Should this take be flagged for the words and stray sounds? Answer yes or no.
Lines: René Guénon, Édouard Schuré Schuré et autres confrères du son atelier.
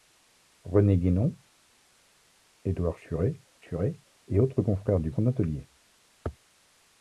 no